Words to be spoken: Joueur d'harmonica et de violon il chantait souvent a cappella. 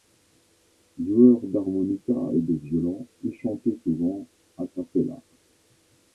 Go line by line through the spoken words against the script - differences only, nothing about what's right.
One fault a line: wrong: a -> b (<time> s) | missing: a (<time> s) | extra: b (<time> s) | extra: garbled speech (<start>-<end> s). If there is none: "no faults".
no faults